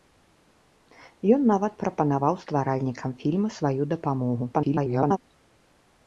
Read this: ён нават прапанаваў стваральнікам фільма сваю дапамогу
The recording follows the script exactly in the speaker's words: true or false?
false